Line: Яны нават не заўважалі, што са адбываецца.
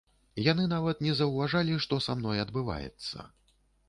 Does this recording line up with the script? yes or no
no